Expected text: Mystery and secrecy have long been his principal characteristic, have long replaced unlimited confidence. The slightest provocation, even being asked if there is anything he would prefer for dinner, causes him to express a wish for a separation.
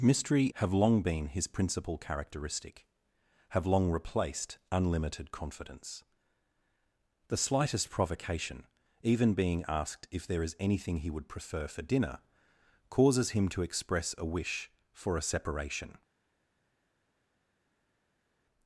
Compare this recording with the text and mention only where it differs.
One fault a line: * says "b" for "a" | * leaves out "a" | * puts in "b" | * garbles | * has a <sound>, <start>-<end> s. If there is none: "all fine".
* leaves out "and secrecy"